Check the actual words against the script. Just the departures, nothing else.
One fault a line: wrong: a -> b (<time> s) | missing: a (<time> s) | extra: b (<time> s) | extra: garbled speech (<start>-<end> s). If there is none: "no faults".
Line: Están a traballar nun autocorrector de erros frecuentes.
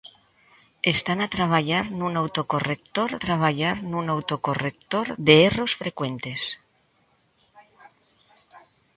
extra: traballar nun autocorrector (3.2 s)